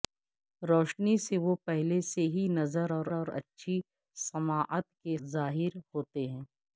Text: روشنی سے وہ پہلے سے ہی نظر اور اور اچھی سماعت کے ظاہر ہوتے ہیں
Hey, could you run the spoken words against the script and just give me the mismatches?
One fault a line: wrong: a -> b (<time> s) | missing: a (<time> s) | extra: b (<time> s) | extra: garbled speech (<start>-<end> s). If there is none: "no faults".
no faults